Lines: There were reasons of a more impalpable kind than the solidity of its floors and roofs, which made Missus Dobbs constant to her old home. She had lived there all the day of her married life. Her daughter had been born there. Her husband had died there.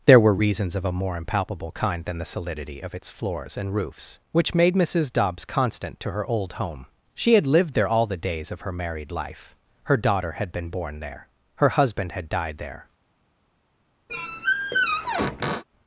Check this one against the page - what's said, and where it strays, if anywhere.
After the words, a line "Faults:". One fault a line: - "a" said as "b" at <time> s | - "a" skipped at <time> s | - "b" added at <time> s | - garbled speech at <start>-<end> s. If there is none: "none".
There were reasons of a more impalpable kind than the solidity of its floors and roofs, which made Missus Dobbs constant to her old home. She had lived there all the days of her married life. Her daughter had been born there. Her husband had died there.
Faults:
- "day" said as "days" at 8.2 s